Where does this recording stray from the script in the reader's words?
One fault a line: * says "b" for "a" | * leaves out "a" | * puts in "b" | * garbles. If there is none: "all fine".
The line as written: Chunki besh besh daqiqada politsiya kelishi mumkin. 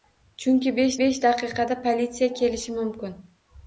all fine